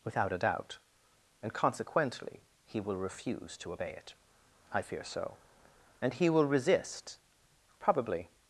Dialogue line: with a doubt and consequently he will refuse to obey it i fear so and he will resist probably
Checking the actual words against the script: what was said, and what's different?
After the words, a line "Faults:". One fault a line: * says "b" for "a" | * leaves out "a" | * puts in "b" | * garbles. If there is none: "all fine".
without a doubt and consequently he will refuse to obey it i fear so and he will resist probably
Faults:
* says "without" for "with"